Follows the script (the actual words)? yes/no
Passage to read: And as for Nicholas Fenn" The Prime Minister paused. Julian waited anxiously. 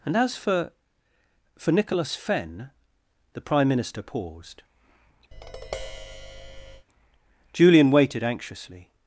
no